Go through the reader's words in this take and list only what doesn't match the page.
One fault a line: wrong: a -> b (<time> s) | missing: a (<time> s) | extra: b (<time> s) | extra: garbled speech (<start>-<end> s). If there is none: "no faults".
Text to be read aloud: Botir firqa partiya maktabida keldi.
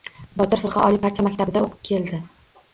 extra: oliy (0.9 s)
extra: o‘qib (1.7 s)